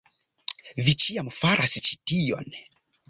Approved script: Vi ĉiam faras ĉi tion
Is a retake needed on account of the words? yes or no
no